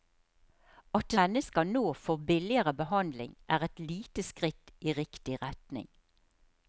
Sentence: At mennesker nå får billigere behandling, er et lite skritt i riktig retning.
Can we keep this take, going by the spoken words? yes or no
yes